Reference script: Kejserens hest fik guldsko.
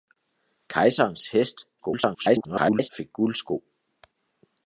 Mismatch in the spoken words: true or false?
true